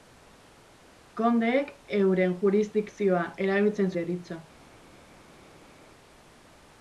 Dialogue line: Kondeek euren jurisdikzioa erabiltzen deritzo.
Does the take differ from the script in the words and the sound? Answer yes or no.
no